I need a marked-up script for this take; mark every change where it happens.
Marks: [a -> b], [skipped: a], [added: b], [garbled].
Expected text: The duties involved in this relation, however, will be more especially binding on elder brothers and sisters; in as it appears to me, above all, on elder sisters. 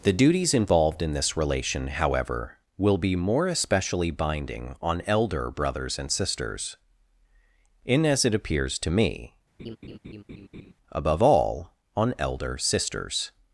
The duties involved in this relation, however, will be more especially binding on elder brothers and sisters; in as it appears to me, above all, on elder sisters.